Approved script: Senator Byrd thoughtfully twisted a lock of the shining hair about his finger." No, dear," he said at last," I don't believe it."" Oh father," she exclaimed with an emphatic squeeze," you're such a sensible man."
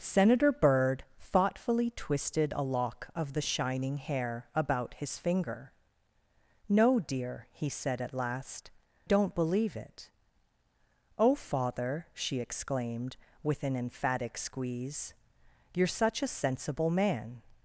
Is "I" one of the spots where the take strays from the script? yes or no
yes